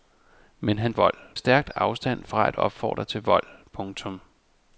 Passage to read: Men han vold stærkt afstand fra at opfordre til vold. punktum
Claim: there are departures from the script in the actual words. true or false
false